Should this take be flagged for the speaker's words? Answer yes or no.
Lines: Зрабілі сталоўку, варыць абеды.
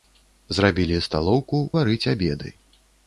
no